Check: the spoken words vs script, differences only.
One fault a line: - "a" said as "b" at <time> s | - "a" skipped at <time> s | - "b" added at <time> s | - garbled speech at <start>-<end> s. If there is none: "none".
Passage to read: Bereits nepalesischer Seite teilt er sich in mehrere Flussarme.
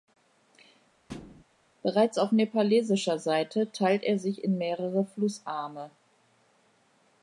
- "auf" added at 2.2 s